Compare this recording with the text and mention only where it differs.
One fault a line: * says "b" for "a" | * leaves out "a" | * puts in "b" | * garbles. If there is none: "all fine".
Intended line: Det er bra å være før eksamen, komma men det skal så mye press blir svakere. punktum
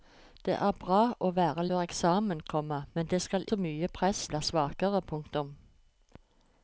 all fine